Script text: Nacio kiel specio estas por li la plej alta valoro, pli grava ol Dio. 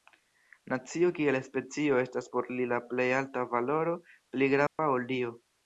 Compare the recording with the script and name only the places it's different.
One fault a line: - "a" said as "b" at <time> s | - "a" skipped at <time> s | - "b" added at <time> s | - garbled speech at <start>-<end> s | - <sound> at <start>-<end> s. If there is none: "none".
- dropout at 4.7-4.8 s